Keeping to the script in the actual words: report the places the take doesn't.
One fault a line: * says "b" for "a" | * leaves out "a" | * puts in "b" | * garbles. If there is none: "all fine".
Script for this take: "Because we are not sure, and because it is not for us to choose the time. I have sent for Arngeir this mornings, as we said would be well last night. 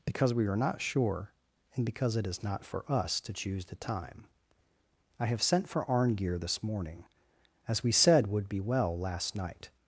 * says "morning" for "mornings"